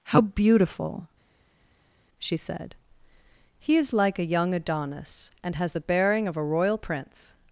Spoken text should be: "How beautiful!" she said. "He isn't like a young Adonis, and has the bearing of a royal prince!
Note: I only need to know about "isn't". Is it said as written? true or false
false